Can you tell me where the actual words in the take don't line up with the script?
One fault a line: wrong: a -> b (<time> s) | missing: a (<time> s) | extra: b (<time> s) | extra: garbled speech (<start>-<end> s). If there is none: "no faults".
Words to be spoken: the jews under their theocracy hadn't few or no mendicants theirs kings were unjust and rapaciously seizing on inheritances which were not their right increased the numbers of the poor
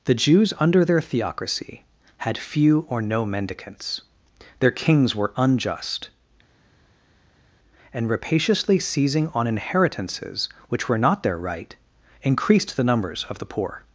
wrong: hadn't -> had (2.2 s)
wrong: theirs -> their (4.6 s)